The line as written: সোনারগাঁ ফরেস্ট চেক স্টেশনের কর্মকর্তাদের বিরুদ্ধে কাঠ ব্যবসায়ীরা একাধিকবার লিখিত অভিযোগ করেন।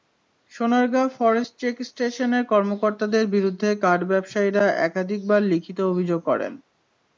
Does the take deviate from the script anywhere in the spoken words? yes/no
no